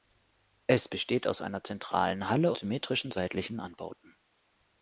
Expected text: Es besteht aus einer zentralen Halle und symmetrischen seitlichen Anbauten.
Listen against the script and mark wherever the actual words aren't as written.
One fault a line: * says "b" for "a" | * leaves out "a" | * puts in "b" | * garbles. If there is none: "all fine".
* leaves out "und"